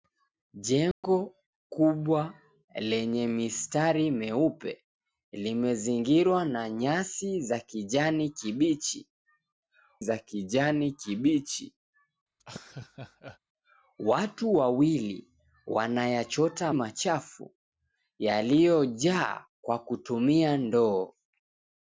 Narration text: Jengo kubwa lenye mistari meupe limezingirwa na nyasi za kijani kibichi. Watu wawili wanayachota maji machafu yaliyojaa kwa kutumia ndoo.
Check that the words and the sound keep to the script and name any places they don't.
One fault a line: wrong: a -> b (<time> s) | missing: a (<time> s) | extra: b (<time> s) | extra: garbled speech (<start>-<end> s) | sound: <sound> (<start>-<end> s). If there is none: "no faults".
sound: dropout (0.9-1.0 s)
extra: za kijani kibichi (10.0 s)
sound: laugh (12.4-13.4 s)
missing: maji (16.7 s)